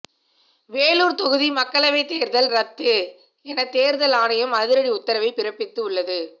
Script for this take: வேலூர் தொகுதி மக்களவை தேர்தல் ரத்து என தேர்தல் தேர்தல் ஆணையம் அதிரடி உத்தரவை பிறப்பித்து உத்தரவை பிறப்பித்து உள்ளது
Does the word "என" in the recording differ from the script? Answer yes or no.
no